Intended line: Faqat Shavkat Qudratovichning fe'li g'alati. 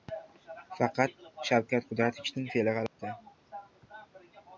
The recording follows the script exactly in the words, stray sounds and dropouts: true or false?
false